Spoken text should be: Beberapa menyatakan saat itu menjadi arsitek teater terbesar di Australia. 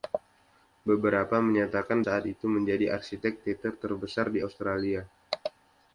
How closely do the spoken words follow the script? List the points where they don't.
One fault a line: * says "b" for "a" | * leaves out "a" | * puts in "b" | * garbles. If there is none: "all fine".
all fine